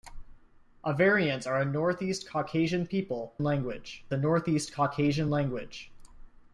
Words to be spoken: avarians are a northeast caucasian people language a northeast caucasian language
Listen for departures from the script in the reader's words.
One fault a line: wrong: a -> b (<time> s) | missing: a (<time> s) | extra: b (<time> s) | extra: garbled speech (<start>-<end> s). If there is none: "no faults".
no faults